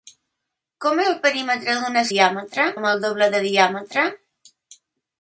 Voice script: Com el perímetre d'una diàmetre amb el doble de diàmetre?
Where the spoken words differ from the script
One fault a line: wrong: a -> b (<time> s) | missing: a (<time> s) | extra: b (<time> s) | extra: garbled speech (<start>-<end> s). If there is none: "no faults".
no faults